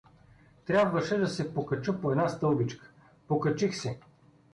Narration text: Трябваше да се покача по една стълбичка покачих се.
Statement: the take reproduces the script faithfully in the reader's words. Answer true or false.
true